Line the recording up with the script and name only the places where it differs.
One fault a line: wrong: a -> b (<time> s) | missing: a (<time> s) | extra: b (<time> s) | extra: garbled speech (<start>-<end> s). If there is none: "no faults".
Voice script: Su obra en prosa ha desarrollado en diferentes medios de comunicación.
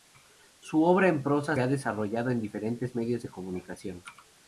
no faults